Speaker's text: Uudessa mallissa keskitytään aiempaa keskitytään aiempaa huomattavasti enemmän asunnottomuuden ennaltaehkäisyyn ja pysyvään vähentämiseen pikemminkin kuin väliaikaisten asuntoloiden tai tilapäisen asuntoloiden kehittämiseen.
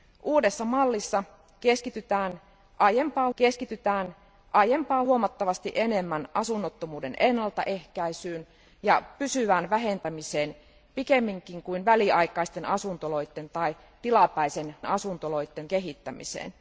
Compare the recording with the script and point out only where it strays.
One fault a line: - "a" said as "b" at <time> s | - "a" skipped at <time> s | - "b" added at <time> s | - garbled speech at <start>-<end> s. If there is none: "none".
none